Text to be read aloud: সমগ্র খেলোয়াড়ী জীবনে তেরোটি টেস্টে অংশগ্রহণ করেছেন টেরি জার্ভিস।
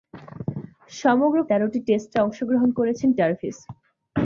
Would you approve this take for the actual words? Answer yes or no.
no